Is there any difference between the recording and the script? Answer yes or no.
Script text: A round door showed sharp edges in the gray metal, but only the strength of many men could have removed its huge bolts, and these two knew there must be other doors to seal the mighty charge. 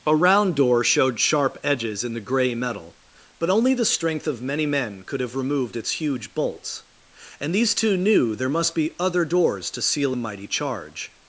no